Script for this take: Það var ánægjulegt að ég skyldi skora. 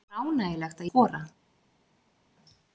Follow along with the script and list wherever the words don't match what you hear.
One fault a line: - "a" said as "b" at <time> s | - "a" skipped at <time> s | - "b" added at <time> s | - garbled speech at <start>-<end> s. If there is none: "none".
- "ég skyldi" skipped at 0.9 s